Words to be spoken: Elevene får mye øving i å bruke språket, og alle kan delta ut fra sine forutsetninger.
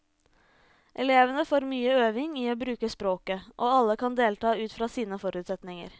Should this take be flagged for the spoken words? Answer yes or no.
no